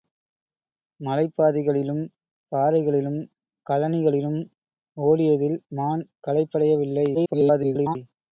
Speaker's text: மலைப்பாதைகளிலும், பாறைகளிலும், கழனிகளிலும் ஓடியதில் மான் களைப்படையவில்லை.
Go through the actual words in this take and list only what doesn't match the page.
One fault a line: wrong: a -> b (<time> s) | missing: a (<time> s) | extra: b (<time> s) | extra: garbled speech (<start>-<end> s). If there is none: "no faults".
extra: garbled speech (7.1-8.0 s)